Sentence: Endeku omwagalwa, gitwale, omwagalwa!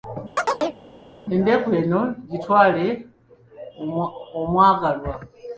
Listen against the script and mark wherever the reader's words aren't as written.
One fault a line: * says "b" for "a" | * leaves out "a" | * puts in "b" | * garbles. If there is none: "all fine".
* says "eno" for "omwagalwa"